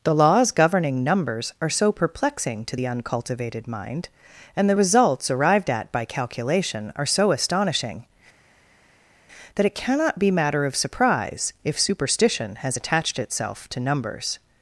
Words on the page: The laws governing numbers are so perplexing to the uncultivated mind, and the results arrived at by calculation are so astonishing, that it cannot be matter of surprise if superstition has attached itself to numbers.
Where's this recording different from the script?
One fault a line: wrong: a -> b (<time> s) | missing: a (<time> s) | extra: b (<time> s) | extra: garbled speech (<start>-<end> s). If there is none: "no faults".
no faults